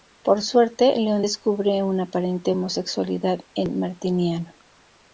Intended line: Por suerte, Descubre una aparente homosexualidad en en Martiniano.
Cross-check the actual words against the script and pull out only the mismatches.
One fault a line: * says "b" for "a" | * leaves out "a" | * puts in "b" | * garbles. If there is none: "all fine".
* puts in "Leon"
* leaves out "en"